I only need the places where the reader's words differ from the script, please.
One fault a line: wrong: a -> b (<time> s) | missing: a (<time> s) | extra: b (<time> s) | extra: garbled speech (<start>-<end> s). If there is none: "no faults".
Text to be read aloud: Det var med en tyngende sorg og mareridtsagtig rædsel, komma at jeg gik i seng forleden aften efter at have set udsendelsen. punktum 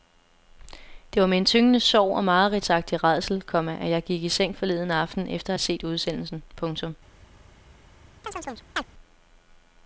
no faults